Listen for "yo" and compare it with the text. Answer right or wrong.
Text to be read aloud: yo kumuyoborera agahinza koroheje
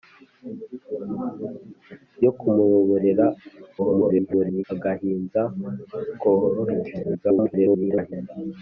right